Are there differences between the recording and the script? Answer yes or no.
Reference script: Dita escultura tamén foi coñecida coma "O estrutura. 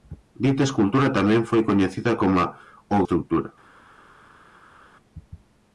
no